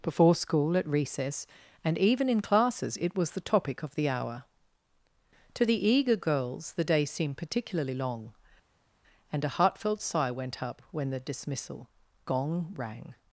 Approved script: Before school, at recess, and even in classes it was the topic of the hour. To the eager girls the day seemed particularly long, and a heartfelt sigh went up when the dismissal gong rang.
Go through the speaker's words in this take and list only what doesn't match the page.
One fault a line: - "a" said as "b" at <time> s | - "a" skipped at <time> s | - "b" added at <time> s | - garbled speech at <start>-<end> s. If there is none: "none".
none